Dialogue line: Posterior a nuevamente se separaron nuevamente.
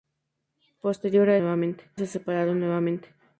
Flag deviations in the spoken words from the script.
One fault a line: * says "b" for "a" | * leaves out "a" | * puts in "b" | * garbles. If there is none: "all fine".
all fine